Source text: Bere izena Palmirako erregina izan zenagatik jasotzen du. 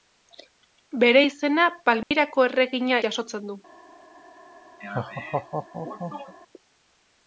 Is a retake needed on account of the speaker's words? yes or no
yes